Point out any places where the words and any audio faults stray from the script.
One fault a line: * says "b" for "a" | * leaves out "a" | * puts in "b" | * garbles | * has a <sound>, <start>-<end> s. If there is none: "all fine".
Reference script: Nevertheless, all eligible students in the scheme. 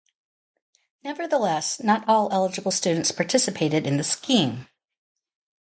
* puts in "not"
* puts in "participated"